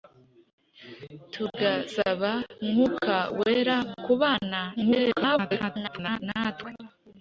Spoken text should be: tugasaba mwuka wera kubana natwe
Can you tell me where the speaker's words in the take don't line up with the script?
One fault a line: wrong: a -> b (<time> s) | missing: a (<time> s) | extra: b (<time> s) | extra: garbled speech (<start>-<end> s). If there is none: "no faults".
extra: garbled speech (4.8-6.2 s)